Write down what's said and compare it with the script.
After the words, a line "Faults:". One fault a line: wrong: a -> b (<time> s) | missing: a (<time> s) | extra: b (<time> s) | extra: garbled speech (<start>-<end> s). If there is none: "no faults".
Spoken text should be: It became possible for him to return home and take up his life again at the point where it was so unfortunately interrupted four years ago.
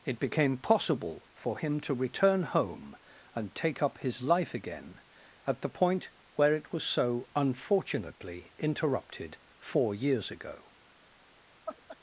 It became possible for him to return home and take up his life again at the point where it was so unfortunately interrupted four years ago.
Faults:
no faults